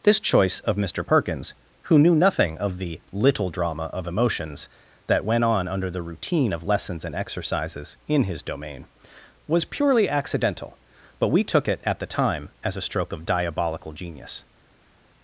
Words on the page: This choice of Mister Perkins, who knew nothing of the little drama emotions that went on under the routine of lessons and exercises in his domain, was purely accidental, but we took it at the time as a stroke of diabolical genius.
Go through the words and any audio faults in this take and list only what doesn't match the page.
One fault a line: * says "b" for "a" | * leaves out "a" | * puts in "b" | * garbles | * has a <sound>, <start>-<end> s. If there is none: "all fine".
* puts in "of"